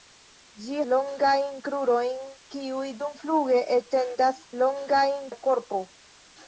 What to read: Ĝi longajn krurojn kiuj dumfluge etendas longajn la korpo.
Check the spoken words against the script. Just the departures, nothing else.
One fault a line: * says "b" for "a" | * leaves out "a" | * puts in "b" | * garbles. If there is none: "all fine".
all fine